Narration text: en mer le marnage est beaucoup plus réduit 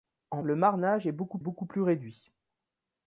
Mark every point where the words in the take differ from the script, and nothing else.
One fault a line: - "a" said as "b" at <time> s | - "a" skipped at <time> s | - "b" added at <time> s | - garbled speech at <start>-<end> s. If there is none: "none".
- "mer" skipped at 0.4 s
- "beaucoup" added at 1.4 s